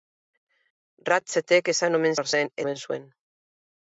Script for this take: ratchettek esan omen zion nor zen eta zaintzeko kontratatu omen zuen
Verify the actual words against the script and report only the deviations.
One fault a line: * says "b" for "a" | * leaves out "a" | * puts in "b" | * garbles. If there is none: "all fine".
* leaves out "zion"
* leaves out "eta zaintzeko kontratatu"